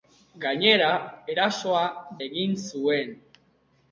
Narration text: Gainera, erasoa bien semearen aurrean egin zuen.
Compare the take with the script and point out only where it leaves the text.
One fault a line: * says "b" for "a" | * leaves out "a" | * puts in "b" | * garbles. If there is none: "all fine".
* leaves out "bien semearen aurrean"